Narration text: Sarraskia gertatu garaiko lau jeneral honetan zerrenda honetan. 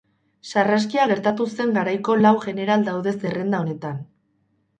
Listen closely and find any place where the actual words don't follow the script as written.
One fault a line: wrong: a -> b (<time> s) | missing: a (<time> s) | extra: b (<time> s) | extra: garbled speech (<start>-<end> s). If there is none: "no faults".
extra: zen (1.6 s)
wrong: honetan -> daude (2.9 s)